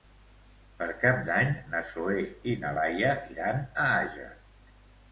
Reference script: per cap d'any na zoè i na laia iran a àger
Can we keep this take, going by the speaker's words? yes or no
yes